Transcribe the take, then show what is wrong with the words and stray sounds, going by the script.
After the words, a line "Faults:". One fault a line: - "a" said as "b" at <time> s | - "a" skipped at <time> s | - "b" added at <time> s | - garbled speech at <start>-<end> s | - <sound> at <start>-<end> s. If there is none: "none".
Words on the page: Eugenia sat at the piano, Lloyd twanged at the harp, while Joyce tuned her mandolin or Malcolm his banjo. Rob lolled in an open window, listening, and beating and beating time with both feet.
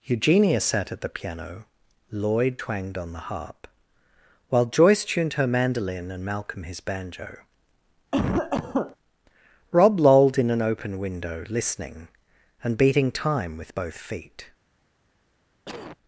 Eugenia sat at the piano, Lloyd twanged on the harp, while Joyce tuned her mandolin and Malcolm his banjo. Rob lolled in an open window, listening, and beating time with both feet.
Faults:
- "at" said as "on" at 3.0 s
- "or" said as "and" at 6.1 s
- cough at 8.1-9.0 s
- "and beating" skipped at 13.1 s
- cough at 15.7-16.0 s